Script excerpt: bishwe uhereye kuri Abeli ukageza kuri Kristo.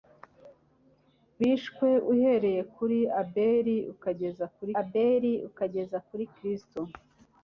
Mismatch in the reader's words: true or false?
true